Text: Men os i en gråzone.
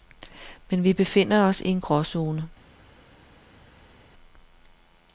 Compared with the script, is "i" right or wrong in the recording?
right